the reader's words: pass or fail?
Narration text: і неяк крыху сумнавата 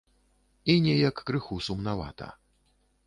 pass